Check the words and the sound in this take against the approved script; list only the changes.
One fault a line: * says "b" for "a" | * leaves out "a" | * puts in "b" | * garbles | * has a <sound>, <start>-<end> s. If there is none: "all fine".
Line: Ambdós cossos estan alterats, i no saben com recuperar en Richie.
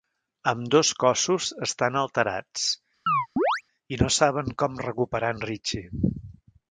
* has a chirp, 3.1-3.6 s